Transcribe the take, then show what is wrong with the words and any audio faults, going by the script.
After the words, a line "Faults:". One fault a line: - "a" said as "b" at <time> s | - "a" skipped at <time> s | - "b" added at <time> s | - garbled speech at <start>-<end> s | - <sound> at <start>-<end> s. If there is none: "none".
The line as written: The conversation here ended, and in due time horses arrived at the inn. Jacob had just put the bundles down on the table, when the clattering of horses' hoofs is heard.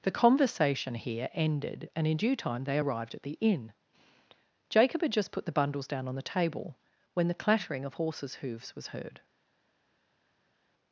The conversation here ended, and in due time they arrived at the inn. Jacob had just put the bundles down on the table, when the clattering of horses' hoofs was heard.
Faults:
- "horses" said as "they" at 2.6 s
- "is" said as "was" at 8.8 s